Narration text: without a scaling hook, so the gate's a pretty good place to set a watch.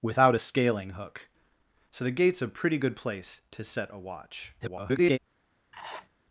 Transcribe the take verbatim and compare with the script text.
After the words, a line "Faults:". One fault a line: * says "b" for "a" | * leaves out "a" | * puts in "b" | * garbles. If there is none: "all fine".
without a scaling hook, so the gate's a pretty good place to set a watch. [garbled]
Faults:
* garbles